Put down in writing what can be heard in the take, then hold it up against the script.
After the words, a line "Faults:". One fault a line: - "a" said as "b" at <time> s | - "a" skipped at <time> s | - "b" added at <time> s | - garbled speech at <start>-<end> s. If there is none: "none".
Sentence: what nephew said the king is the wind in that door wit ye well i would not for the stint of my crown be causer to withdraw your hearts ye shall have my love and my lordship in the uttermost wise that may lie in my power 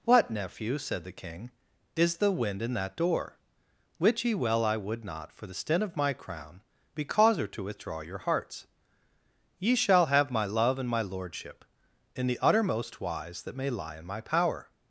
what nephew said the king is the wind in that door wit ye well i would not for the stint of my crown be causer to withdraw your hearts ye shall have my love and my lordship in the uttermost wise that may lie in my power
Faults:
none